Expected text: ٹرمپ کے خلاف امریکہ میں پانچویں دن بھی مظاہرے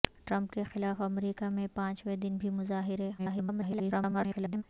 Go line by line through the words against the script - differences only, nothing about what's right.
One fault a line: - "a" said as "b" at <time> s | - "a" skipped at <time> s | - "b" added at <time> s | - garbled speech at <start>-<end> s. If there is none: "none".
- garbled speech at 3.2-4.6 s